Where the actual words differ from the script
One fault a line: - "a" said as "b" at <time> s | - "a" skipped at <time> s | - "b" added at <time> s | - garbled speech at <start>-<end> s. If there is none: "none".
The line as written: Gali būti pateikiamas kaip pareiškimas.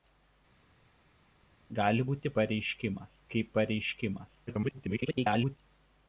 - "pateikiamas" said as "pareiškimas" at 2.4 s
- garbled speech at 4.5-5.6 s